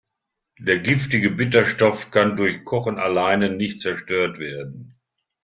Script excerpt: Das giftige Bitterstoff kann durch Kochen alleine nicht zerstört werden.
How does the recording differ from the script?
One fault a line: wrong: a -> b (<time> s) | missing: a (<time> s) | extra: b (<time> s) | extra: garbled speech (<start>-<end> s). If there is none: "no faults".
wrong: Das -> Der (0.6 s)